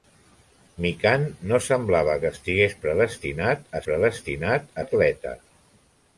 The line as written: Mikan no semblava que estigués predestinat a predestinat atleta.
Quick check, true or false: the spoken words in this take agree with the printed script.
true